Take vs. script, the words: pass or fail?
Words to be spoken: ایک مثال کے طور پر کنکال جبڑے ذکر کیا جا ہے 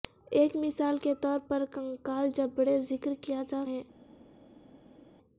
pass